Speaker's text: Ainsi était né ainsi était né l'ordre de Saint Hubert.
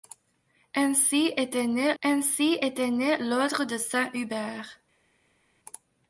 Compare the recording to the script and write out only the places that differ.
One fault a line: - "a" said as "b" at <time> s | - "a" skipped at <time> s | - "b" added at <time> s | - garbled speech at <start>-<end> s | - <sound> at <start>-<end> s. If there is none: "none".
none